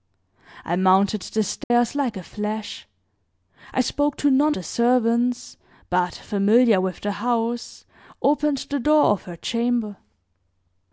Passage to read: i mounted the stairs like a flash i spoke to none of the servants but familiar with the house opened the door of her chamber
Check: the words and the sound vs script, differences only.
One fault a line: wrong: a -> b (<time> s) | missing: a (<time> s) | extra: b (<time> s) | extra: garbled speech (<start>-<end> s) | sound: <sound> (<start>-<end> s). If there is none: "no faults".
sound: dropout (1.6-1.7 s)
missing: of (4.5 s)